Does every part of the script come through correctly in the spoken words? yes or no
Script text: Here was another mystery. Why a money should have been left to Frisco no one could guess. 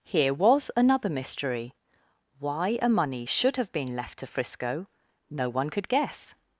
yes